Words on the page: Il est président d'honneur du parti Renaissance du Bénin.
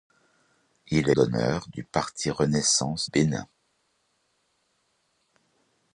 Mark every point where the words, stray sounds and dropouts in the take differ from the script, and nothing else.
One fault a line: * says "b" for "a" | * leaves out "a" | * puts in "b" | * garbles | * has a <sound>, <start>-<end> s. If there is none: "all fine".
* leaves out "est président"
* leaves out "du"